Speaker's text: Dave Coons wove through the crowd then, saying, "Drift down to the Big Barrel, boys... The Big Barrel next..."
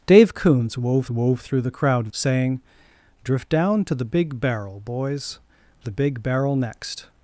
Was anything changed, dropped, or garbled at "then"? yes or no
yes